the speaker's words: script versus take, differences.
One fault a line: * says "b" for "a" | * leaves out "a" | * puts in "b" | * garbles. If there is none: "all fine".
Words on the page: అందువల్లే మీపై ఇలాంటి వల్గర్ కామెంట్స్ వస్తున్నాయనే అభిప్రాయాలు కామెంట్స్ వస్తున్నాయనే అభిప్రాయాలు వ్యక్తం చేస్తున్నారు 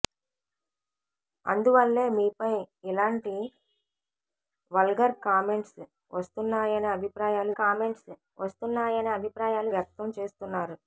all fine